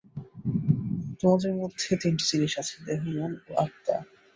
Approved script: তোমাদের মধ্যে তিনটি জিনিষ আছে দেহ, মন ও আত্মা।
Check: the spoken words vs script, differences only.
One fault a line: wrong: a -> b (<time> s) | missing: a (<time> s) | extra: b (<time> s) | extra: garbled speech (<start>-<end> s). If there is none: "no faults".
no faults